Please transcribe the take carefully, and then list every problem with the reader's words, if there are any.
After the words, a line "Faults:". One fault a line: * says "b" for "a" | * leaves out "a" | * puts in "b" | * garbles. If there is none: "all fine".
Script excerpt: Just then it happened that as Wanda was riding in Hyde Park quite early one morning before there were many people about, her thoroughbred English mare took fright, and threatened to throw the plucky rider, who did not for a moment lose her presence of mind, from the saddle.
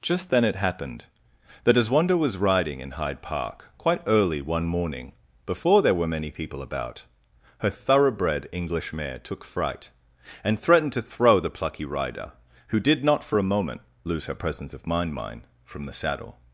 Just then it happened that as Wanda was riding in Hyde Park quite early one morning before there were many people about, her thoroughbred English mare took fright, and threatened to throw the plucky rider, who did not for a moment lose her presence of mind mind, from the saddle.
Faults:
* puts in "mind"